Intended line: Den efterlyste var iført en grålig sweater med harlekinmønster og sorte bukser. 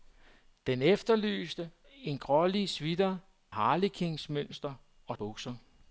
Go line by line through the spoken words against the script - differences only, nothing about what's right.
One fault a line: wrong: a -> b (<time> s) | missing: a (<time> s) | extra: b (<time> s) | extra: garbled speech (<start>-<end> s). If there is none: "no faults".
missing: var iført (1.7 s)
missing: med (3.2 s)
missing: sorte (5.2 s)